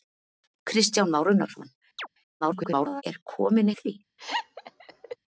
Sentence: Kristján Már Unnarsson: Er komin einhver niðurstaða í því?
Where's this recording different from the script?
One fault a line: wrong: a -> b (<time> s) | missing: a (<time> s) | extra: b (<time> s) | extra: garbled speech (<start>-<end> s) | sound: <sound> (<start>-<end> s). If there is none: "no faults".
sound: chirp (2.0-2.1 s)
extra: garbled speech (2.4-3.0 s)
missing: einhver niðurstaða (3.7 s)
sound: laugh (4.2-5.2 s)